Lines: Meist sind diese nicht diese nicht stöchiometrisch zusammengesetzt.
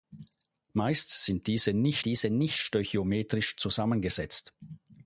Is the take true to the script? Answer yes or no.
yes